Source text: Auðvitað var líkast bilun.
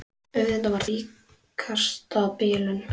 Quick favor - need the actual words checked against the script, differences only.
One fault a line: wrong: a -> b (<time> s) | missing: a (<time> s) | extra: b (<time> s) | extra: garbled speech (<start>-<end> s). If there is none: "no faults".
no faults